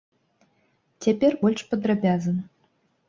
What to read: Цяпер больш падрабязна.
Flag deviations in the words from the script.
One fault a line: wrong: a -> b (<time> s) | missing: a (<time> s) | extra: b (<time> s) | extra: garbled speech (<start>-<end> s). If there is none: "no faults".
no faults